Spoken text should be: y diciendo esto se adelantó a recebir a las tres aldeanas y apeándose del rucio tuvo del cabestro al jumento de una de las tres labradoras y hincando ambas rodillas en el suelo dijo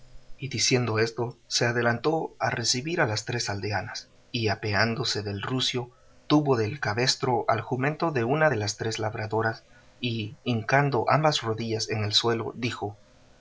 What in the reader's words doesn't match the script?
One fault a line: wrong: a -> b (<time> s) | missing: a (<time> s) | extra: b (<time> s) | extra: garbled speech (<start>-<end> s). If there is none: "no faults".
no faults